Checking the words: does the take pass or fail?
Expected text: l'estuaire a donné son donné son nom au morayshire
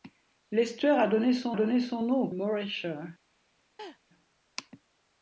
pass